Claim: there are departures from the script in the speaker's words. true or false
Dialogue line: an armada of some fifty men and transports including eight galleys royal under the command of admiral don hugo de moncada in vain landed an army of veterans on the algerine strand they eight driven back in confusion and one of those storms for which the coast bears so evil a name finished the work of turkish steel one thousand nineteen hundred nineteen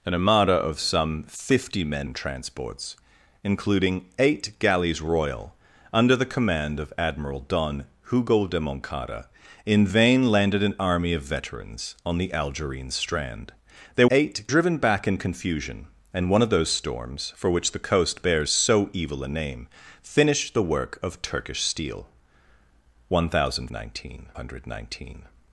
false